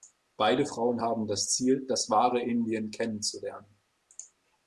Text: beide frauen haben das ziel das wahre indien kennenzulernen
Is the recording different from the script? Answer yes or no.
no